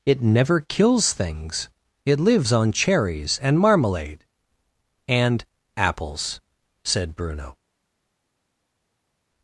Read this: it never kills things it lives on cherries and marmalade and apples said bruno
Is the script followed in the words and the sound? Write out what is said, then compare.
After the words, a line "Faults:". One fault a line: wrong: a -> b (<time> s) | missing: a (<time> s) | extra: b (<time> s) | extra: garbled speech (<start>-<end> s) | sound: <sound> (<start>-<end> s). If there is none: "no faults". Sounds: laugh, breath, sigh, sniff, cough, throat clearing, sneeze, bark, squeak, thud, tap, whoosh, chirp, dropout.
it never kills things it lives on cherries and marmalade and apples said bruno
Faults:
no faults